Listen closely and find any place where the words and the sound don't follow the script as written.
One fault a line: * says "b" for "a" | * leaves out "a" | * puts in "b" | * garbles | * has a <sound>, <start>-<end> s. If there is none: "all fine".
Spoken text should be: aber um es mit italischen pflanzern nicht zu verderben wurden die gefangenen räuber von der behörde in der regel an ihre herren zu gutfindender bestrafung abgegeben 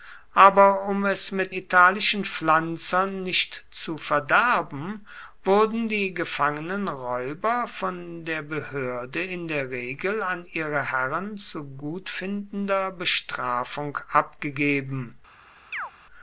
* has a chirp, 15.7-15.9 s